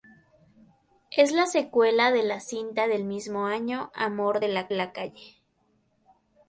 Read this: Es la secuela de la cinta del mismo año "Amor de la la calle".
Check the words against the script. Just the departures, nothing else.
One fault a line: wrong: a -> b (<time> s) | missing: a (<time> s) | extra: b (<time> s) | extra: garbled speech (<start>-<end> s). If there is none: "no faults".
no faults